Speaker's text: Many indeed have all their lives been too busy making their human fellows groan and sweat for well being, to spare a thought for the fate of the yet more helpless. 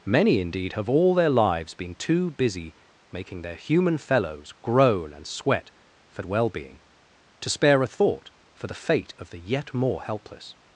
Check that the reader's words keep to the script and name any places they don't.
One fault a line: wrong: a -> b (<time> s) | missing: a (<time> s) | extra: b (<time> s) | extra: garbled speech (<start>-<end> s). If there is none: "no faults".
no faults